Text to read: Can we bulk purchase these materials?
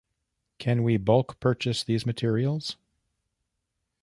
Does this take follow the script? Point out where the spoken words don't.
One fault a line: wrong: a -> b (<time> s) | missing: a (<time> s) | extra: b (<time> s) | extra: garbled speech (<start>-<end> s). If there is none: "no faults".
no faults